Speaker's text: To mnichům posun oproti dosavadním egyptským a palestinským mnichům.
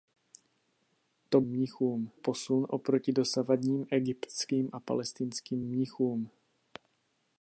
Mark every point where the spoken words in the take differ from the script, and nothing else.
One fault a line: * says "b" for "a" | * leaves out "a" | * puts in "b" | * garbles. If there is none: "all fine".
all fine